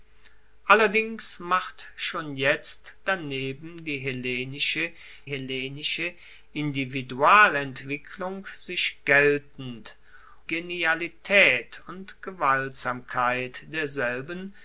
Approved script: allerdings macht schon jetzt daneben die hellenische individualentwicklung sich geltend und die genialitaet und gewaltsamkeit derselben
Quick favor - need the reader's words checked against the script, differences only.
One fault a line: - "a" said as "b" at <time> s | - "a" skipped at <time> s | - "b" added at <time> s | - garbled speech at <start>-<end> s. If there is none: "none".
- "hellenische" added at 5.2 s
- "und die" skipped at 10.0 s